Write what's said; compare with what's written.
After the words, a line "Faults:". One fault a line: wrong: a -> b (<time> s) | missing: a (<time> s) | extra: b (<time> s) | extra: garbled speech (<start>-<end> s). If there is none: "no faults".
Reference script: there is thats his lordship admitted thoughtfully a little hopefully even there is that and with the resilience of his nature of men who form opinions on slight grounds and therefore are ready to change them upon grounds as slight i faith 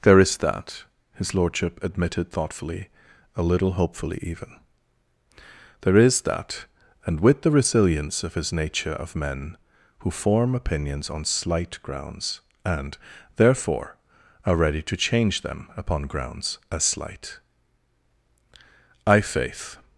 there is that his lordship admitted thoughtfully a little hopefully even there is that and with the resilience of his nature of men who form opinions on slight grounds and therefore are ready to change them upon grounds as slight i faith
Faults:
wrong: thats -> that (0.4 s)